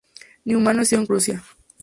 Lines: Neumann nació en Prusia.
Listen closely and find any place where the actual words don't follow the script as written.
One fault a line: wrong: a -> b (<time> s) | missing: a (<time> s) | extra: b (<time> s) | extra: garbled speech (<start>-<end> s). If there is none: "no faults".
no faults